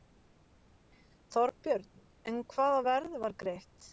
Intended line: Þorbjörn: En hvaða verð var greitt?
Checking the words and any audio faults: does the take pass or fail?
pass